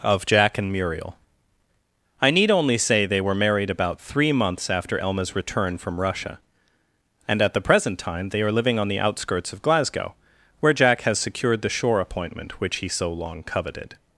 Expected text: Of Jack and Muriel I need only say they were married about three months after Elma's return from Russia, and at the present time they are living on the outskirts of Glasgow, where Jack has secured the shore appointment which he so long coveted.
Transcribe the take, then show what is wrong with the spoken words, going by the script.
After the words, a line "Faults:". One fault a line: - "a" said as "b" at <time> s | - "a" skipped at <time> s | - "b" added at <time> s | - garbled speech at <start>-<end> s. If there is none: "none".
Of Jack and Muriel I need only say they were married about three months after Elma's return from Russia, and at the present time they are living on the outskirts of Glasgow, where Jack has secured the shore appointment which he so long coveted.
Faults:
none